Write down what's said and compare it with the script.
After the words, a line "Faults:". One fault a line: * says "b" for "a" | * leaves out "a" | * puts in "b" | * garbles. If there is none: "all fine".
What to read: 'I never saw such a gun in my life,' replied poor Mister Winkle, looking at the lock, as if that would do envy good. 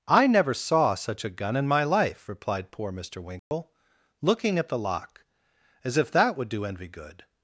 'I never saw such a gun in my life,' replied poor Mister Winkle, looking at the lock, as if that would do envy good.
Faults:
all fine